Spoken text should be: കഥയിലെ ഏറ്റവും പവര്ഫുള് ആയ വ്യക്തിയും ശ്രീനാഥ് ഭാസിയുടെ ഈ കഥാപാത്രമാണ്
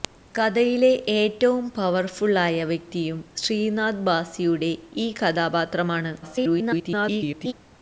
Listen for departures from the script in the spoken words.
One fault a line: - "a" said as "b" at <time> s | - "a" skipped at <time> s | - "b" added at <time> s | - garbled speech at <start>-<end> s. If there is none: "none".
- garbled speech at 6.2-7.5 s